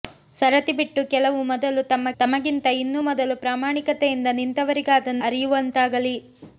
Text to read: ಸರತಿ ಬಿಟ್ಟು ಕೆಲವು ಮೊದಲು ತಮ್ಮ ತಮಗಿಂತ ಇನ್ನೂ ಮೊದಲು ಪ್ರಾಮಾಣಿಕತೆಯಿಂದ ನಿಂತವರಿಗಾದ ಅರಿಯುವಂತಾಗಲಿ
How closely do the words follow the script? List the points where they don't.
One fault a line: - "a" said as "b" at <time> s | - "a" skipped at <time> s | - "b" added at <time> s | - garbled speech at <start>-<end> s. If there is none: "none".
none